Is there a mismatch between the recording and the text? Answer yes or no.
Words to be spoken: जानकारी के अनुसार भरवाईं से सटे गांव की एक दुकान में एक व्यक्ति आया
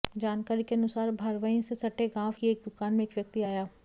no